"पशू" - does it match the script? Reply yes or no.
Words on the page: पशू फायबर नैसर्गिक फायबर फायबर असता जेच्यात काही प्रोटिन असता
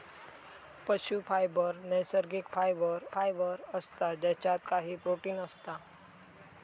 yes